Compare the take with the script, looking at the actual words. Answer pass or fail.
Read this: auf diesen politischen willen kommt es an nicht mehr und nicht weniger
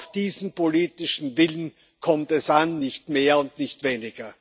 pass